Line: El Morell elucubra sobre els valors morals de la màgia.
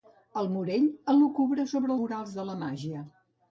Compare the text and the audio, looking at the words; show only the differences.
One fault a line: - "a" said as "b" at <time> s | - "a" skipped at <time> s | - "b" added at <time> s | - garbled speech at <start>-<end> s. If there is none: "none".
- "els valors" skipped at 1.9 s